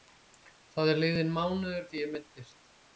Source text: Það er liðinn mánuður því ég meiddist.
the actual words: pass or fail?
pass